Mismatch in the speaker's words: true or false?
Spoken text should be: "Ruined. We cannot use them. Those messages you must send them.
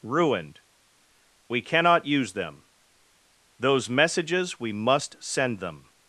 true